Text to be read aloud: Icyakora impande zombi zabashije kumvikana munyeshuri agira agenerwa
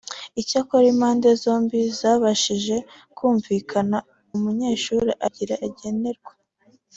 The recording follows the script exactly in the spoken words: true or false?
true